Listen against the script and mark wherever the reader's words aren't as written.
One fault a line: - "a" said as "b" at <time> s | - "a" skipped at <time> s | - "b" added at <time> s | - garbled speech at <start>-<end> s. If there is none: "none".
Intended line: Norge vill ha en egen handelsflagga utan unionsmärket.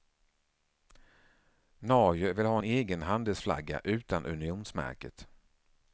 none